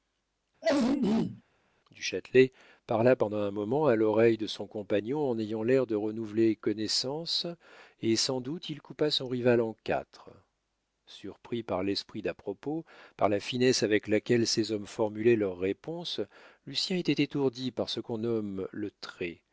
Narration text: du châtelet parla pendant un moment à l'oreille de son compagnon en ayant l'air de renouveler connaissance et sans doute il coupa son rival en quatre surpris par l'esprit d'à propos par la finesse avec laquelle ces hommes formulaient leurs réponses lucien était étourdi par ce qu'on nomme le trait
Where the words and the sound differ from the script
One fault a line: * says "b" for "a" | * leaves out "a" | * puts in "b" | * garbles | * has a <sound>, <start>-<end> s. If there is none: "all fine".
* has a throat clearing, 0.6-1.4 s